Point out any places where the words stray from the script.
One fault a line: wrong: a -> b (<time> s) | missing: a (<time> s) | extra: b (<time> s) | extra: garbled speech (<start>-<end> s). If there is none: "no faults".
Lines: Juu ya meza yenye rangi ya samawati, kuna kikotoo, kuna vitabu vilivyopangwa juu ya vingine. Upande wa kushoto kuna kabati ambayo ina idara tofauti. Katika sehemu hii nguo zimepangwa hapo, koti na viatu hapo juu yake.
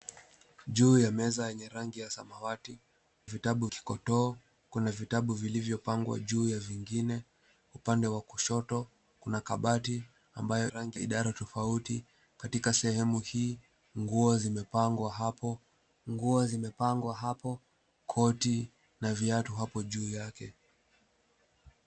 wrong: kuna -> vitabu (3.2 s)
wrong: ina -> rangi (10.7 s)
extra: nguo zimepangwa hapo (16.1 s)